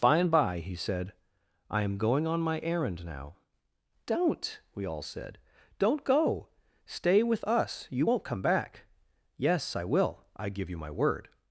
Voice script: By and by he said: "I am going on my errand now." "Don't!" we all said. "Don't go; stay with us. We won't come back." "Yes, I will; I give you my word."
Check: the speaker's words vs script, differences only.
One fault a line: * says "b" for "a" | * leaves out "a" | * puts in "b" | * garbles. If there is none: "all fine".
* says "You" for "We"